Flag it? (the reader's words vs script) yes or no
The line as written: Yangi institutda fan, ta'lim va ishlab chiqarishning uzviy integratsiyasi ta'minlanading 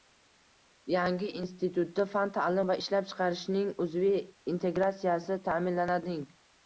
no